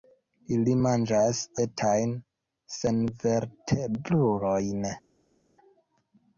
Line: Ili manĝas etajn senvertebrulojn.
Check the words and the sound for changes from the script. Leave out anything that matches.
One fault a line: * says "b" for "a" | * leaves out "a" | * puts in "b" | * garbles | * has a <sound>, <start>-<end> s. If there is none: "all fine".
all fine